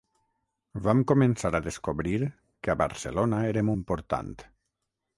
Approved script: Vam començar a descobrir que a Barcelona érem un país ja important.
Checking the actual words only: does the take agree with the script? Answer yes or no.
no